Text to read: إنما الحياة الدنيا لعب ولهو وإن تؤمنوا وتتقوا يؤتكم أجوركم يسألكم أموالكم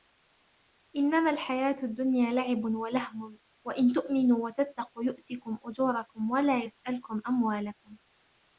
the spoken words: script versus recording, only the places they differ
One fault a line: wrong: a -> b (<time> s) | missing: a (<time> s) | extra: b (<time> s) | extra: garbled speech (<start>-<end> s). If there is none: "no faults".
extra: ولا (6.3 s)